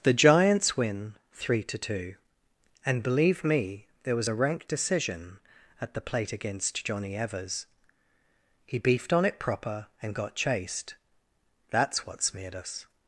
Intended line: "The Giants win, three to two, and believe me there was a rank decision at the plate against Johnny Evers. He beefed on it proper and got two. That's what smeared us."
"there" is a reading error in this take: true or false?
false